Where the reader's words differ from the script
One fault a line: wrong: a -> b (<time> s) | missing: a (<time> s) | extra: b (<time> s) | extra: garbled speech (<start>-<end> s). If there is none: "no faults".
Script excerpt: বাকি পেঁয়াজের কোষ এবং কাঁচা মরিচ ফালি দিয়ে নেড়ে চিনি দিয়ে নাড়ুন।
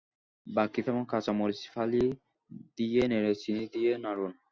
missing: পেঁয়াজের কোষ (0.8 s)